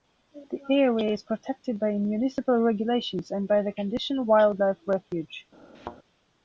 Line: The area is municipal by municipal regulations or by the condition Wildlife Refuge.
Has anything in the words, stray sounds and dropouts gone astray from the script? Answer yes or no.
yes